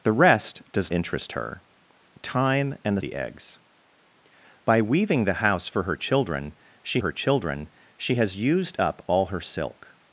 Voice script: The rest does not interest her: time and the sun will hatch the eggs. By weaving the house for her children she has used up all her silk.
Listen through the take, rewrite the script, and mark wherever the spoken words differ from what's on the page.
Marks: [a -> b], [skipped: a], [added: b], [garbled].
The rest does [skipped: not] interest her: time and the [skipped: sun will hatch] the eggs. By weaving the house for her children she [added: her children she] has used up all her silk.